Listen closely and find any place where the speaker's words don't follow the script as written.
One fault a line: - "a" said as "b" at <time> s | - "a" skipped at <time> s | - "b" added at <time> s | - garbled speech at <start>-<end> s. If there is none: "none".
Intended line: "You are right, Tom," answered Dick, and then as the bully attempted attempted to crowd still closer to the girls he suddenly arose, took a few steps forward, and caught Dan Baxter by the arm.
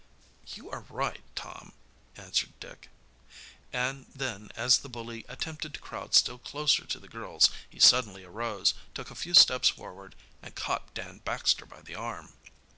- "attempted" skipped at 5.7 s